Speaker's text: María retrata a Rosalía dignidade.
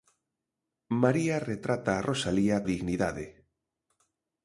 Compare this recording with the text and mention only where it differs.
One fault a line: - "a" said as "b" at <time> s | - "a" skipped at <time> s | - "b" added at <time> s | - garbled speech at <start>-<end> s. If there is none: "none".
none